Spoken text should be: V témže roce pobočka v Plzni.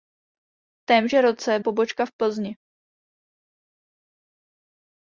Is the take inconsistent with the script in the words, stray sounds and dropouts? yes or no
no